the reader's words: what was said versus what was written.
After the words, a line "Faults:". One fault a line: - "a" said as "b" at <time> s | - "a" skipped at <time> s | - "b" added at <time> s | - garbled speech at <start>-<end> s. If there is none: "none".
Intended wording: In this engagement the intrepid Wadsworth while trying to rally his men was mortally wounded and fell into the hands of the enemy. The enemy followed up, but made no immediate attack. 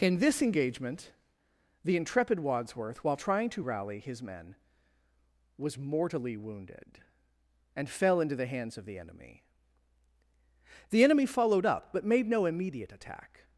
In this engagement the intrepid Wadsworth while trying to rally his men was mortally wounded and fell into the hands of the enemy. The enemy followed up, but made no immediate attack.
Faults:
none